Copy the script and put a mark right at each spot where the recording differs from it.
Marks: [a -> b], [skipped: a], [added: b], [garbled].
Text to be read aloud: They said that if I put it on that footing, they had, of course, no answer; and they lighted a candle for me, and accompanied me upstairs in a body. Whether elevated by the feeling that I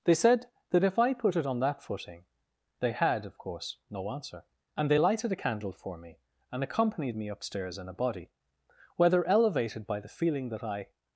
They said that if I put it on that footing, they had, of course, no answer; and they lighted a candle for me, and accompanied me upstairs in a body. Whether elevated by the feeling that I